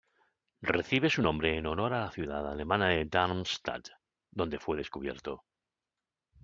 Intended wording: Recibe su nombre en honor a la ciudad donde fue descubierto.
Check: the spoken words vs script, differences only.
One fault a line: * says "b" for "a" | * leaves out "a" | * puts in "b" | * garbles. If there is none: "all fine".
* puts in "alemana de Darmstadt"